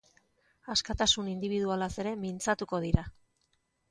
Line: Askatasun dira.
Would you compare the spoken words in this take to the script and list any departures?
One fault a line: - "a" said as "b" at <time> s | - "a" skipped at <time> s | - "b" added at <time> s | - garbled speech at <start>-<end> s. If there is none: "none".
- "indibidualaz ere mintzatuko" added at 1.3 s